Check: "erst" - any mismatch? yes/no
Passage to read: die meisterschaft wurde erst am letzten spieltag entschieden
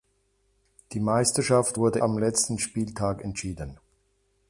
yes